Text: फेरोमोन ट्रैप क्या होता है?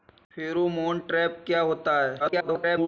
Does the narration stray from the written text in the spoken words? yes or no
yes